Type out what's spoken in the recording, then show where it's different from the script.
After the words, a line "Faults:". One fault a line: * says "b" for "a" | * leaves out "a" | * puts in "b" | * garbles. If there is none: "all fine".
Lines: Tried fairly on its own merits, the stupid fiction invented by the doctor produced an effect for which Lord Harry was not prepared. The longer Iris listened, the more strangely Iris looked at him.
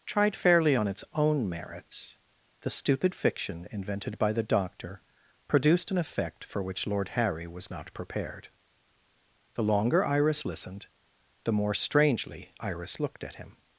Tried fairly on its own merits, the stupid fiction invented by the doctor produced an effect for which Lord Harry was not prepared. The longer Iris listened, the more strangely Iris looked at him.
Faults:
all fine